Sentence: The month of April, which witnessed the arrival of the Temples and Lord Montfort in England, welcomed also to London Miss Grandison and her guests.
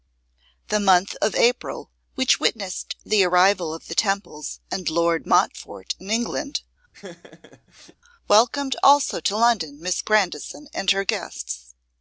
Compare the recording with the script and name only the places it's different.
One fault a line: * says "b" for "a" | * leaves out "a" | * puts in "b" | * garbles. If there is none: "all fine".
all fine